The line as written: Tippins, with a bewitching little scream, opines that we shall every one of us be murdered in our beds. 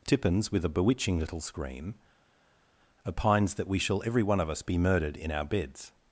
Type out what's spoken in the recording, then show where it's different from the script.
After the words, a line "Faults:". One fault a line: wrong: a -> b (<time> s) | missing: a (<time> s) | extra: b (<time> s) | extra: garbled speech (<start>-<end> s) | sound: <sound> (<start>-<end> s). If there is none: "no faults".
Tippins, with a bewitching little scream, opines that we shall every one of us be murdered in our beds.
Faults:
no faults